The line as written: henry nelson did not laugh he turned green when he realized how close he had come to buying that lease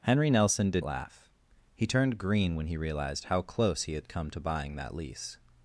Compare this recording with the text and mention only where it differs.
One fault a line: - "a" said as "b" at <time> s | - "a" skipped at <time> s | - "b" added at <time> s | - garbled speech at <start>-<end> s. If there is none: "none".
- "not" skipped at 0.8 s